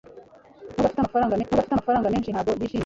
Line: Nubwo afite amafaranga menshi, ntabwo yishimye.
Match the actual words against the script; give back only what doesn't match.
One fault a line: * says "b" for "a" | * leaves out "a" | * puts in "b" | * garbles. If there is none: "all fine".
* puts in "nubwo afite amafaranga"